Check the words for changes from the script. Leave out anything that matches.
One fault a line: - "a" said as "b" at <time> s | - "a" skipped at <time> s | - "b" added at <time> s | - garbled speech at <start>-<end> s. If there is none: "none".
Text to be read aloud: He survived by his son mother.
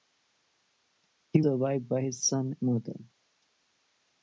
none